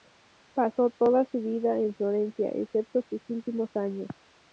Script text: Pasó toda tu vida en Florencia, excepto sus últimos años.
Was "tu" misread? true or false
true